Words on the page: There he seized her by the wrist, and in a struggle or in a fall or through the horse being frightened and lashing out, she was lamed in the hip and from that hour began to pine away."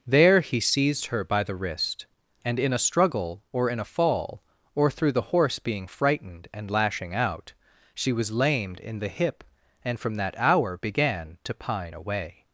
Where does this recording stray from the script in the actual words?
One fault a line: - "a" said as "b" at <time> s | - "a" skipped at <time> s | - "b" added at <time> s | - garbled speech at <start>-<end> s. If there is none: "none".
none